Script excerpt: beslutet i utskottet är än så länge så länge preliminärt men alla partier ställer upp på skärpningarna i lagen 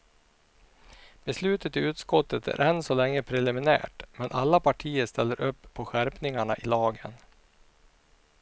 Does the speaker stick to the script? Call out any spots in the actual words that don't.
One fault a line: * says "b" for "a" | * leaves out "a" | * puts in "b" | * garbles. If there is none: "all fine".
* leaves out "så länge"